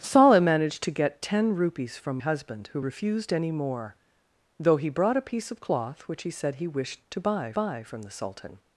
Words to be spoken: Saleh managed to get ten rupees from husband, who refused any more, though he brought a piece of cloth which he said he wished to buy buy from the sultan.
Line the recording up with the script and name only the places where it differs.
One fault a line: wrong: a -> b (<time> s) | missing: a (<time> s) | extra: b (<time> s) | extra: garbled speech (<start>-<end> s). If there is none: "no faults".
no faults